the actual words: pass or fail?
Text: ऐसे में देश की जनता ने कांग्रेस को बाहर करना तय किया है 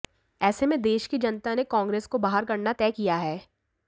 pass